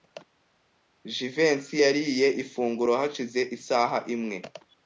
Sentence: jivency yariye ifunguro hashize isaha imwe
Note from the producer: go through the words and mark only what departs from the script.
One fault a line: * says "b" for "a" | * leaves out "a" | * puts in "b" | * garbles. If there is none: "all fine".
all fine